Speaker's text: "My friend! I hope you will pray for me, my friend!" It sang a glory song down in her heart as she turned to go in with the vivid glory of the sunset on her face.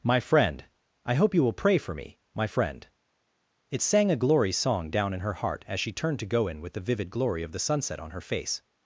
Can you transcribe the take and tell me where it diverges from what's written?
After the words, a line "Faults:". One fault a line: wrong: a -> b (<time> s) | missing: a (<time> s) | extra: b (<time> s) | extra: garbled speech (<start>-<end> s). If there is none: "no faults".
"My friend! I hope you will pray for me, my friend!" It sang a glory song down in her heart as she turned to go in with the vivid glory of the sunset on her face.
Faults:
no faults